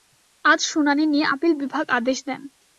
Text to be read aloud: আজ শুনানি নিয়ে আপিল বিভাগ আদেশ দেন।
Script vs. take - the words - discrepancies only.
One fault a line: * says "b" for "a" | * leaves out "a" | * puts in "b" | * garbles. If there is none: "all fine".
all fine